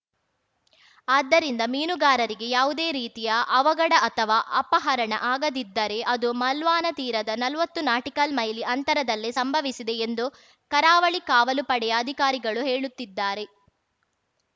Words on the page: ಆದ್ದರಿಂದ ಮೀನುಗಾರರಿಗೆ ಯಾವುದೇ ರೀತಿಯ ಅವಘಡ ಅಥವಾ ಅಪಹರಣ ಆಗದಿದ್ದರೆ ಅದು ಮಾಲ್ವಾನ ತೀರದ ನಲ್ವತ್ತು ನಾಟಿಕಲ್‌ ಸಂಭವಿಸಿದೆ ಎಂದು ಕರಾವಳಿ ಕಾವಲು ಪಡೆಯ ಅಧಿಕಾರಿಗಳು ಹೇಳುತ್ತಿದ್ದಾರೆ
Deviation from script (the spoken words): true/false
true